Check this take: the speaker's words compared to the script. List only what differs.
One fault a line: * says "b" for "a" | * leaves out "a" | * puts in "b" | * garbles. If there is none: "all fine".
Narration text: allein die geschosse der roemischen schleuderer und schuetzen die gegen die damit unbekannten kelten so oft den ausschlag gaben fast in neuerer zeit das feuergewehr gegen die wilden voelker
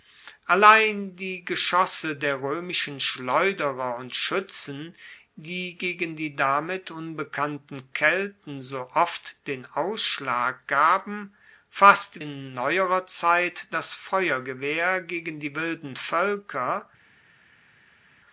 all fine